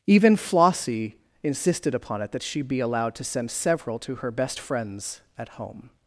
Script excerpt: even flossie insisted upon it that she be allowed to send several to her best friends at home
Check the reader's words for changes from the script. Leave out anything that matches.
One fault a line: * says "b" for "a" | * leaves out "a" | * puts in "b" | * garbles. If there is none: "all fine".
all fine